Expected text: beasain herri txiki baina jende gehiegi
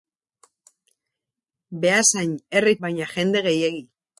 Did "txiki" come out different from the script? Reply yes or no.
yes